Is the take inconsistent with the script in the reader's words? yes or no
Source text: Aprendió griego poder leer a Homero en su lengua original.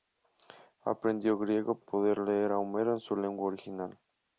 no